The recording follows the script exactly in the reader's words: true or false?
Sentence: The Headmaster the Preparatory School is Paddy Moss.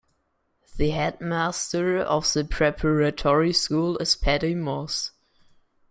false